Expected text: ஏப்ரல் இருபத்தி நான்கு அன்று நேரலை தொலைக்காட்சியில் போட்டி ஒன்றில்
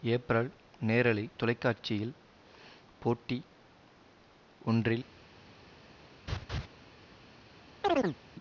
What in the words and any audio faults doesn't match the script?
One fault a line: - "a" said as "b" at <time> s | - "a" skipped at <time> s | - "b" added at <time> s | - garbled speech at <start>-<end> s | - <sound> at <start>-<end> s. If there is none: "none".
- "இருபத்தி நான்கு அன்று" skipped at 0.5 s
- laugh at 6.3-6.7 s
- chirp at 7.8-8.2 s